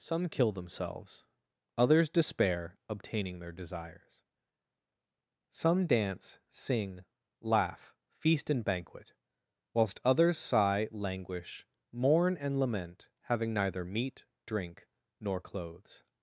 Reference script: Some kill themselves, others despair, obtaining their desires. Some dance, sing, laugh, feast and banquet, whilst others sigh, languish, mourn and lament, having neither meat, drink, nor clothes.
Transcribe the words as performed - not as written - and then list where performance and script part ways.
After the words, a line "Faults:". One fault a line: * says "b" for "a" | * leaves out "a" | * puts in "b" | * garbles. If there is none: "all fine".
Some kill themselves, others despair, obtaining their desires. Some dance, sing, laugh, feast and banquet, whilst others sigh, languish, mourn and lament, having neither meat, drink, nor clothes.
Faults:
all fine